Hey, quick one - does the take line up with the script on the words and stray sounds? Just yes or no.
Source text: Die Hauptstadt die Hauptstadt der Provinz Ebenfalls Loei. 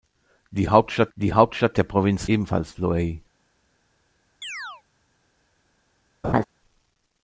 no